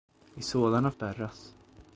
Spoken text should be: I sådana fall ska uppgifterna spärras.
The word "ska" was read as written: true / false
false